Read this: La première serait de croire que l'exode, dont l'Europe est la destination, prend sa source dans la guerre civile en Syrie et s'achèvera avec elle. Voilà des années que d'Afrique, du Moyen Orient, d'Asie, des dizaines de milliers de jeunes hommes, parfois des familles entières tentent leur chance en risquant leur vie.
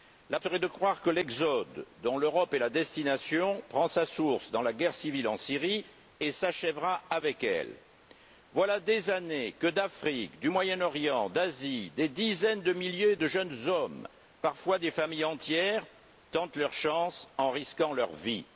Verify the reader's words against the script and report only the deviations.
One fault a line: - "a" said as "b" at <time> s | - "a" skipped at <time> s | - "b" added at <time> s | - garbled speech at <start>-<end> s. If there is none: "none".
- "première" skipped at 0.4 s